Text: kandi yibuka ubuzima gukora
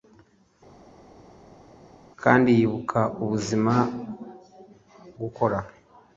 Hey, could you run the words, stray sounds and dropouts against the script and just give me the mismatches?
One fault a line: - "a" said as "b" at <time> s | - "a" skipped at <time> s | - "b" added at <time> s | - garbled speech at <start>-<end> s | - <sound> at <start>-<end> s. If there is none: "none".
none